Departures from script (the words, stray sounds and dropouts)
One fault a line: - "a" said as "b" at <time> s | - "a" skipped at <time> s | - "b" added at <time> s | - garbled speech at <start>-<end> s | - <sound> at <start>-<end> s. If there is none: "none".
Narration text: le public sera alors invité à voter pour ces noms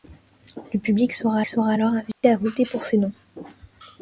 - "sera" added at 1.5 s
- dropout at 2.1-2.2 s